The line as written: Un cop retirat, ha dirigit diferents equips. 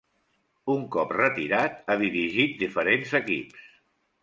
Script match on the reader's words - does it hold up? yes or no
yes